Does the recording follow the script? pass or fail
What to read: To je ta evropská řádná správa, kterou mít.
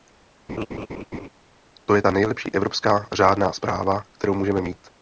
fail